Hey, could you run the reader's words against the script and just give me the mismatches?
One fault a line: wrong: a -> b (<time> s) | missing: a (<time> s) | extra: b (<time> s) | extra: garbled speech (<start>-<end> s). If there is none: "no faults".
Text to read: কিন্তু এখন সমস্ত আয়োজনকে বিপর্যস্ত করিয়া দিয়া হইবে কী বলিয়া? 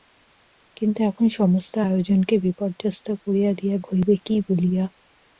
no faults